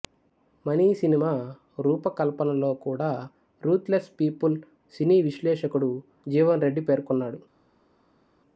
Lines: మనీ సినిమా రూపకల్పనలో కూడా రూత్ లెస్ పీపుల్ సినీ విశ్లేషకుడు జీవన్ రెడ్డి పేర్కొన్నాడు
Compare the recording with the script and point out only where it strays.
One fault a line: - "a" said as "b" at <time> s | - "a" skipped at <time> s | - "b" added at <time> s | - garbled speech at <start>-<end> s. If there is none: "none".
none